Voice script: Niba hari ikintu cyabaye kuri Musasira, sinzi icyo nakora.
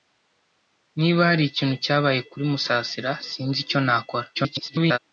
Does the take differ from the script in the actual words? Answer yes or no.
yes